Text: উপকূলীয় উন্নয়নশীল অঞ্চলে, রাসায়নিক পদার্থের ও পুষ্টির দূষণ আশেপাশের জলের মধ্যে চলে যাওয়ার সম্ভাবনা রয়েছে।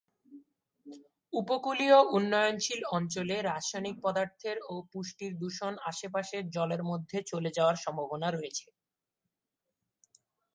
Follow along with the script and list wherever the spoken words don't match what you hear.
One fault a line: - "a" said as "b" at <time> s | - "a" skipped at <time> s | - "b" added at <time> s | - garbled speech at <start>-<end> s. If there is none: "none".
none